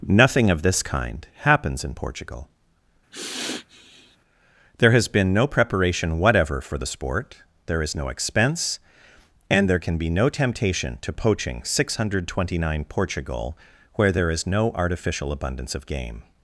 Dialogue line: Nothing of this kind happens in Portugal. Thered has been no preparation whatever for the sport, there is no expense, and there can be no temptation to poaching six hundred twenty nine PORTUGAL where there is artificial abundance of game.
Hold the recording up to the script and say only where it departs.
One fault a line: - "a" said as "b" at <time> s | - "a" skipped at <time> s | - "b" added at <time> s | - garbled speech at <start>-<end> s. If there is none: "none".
- "Thered" said as "There" at 4.8 s
- "no" added at 14.5 s